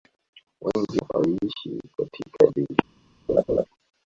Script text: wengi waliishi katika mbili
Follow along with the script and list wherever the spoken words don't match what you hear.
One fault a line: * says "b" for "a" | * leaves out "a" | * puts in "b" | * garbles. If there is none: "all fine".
all fine